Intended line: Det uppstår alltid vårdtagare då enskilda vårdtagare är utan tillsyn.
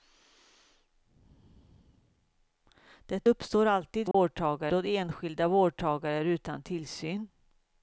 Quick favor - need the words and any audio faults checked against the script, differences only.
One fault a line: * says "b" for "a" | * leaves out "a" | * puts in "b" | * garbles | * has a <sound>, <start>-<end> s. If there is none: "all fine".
* has a dropout, 4.1-4.1 s